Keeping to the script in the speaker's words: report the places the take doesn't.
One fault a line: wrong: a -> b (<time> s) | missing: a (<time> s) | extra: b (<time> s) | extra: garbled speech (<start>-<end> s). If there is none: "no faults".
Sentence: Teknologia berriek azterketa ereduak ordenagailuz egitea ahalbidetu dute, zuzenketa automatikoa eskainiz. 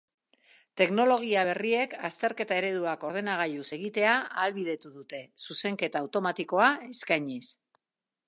no faults